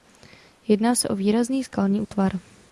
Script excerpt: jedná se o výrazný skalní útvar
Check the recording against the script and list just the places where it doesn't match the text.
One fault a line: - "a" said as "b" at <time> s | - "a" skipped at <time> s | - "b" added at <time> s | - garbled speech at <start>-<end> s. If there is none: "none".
none